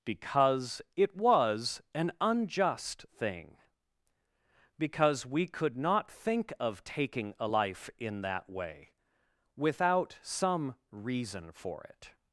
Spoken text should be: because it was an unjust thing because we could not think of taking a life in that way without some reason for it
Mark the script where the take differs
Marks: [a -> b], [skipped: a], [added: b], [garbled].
because it was an unjust thing because we could not think of taking a life in that way without some reason for it